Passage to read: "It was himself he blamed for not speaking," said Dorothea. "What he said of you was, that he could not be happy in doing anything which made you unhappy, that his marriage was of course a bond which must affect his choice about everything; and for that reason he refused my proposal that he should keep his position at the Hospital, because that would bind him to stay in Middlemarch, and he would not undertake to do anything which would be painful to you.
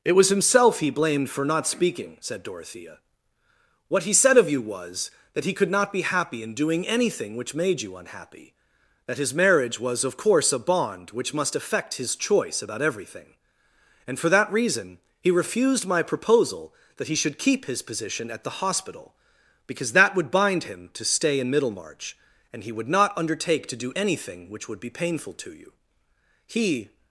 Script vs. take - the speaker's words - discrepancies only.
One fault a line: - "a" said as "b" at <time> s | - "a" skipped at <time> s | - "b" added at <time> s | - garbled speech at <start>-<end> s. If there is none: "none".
- "He" added at 26.4 s